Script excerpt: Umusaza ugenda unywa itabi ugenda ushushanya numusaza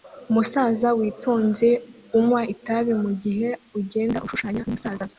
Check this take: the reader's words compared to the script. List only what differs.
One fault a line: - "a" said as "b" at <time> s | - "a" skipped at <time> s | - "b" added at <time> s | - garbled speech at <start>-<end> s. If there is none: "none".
- "ugenda" said as "witonze" at 1.0 s
- "mugihe" added at 3.0 s